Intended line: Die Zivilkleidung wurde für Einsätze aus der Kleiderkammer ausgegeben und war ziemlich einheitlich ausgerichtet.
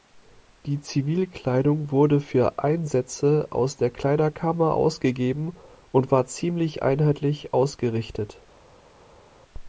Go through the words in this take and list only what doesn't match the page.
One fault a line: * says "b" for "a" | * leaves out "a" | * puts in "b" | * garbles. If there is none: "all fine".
all fine